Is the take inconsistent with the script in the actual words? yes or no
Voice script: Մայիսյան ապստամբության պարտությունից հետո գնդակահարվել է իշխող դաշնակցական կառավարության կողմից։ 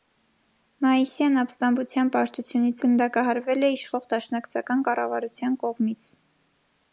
yes